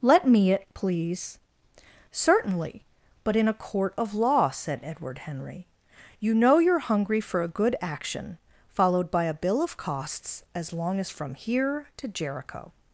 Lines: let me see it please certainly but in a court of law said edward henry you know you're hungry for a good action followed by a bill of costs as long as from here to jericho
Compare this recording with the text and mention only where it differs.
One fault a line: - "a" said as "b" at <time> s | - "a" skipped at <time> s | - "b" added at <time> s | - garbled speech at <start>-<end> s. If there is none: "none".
- "see" skipped at 0.5 s